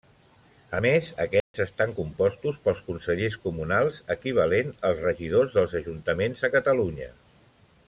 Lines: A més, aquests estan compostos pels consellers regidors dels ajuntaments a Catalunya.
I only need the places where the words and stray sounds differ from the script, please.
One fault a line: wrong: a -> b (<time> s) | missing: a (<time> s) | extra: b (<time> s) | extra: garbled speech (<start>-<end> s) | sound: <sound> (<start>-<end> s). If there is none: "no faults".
sound: dropout (1.4-1.5 s)
extra: comunals equivalent als (3.5 s)